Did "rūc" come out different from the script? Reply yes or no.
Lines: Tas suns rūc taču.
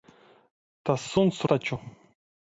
yes